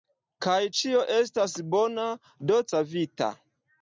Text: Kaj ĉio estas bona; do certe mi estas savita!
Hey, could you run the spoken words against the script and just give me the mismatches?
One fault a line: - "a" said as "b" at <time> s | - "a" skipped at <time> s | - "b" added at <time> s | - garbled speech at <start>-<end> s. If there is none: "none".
- "certe mi estas" skipped at 2.6 s